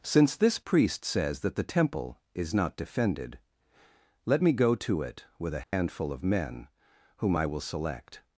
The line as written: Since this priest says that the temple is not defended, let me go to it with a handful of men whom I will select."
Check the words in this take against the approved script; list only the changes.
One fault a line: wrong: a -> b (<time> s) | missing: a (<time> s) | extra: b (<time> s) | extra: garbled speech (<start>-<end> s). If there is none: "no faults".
no faults